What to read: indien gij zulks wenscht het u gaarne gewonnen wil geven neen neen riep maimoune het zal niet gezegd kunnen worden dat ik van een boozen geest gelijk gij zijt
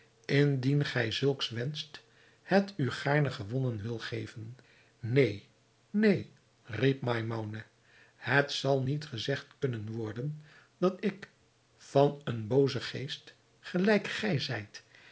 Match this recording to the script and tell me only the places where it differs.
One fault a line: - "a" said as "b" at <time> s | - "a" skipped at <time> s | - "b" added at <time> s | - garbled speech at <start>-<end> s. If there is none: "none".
none